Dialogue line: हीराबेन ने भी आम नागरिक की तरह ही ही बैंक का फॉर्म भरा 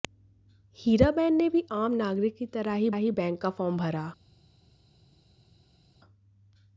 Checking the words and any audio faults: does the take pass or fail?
pass